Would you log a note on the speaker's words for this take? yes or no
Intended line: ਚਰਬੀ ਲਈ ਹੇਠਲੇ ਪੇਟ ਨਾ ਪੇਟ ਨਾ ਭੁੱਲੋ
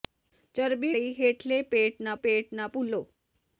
no